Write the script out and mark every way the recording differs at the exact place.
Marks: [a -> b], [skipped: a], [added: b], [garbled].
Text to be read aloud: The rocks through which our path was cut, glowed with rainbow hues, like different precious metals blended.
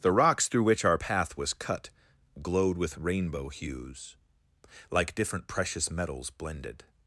The rocks through which our path was cut, glowed with rainbow hues, like different precious metals blended.